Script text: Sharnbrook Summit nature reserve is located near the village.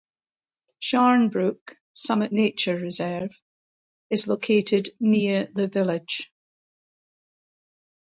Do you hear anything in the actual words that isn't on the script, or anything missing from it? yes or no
no